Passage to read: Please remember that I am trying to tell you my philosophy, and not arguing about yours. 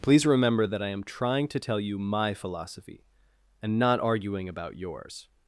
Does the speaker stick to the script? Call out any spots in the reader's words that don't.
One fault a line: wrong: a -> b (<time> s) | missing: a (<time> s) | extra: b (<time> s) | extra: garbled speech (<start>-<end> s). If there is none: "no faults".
no faults